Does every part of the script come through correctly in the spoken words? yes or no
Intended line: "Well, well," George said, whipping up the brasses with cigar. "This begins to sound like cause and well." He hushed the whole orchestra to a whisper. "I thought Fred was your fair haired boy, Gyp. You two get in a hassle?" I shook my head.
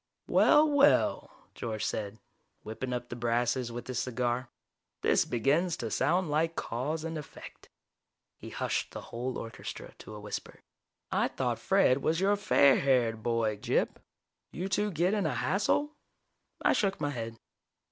no